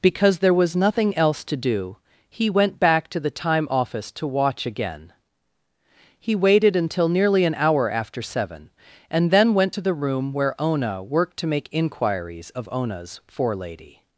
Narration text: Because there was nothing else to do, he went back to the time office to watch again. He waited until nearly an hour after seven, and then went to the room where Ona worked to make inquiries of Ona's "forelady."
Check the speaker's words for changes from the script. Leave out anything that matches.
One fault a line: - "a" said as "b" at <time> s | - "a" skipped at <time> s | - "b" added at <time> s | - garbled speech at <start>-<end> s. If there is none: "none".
none